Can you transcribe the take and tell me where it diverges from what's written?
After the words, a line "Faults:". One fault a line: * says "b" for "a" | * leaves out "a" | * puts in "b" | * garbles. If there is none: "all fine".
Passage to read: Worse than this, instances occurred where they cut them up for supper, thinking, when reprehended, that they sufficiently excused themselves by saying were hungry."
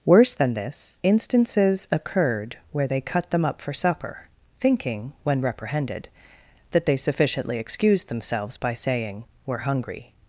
Worse than this, instances occurred where they cut them up for supper, thinking, when reprehended, that they sufficiently excused themselves by saying were hungry."
Faults:
all fine